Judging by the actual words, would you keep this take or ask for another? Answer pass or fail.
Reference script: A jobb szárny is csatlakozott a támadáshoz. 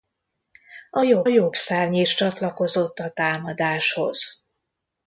fail